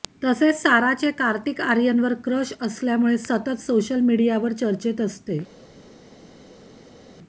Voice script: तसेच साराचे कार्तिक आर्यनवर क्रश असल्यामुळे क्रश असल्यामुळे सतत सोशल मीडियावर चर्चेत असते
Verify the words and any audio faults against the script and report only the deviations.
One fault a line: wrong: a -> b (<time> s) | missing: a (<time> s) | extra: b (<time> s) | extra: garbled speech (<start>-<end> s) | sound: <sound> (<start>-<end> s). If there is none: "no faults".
missing: क्रश असल्यामुळे (3.2 s)